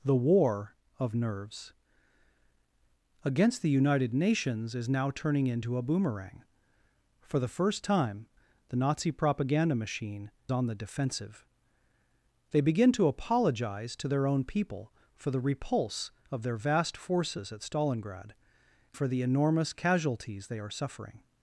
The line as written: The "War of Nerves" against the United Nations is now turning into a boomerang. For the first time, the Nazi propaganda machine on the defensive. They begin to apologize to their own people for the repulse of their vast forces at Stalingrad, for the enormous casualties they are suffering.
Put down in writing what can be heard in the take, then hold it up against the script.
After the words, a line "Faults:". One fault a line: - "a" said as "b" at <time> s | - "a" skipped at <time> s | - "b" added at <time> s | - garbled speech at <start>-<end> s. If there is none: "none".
The "War of Nerves" against the United Nations is now turning into a boomerang. For the first time, the Nazi propaganda machine on the defensive. They begin to apologize to their own people for the repulse of their vast forces at Stalingrad, for the enormous casualties they are suffering.
Faults:
none